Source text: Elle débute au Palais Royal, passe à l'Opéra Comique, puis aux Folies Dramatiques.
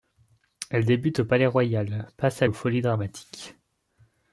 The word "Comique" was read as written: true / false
false